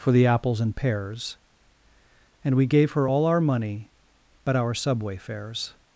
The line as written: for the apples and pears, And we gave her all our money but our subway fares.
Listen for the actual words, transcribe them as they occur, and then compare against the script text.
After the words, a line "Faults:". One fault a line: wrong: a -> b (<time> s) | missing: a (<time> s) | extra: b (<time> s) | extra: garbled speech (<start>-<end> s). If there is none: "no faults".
for the apples and pears, And we gave her all our money but our subway fares.
Faults:
no faults